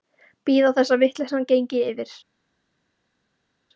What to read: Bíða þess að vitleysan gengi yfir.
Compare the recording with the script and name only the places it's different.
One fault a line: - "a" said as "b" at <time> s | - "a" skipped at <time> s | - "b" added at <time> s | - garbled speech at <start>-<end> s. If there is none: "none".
none